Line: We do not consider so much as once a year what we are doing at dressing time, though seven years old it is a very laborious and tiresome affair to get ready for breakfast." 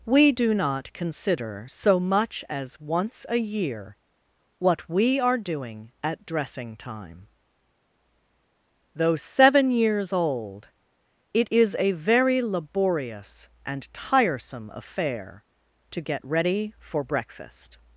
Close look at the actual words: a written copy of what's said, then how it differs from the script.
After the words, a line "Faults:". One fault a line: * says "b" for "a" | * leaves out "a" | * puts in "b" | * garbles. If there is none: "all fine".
We do not consider so much as once a year what we are doing at dressing time, though seven years old it is a very laborious and tiresome affair to get ready for breakfast."
Faults:
all fine